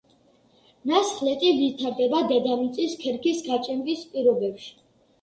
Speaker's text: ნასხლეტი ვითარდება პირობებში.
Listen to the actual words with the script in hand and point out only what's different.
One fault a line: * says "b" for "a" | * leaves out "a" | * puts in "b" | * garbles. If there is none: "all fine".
* puts in "დედამიწის ქერქის გაჭიმვის"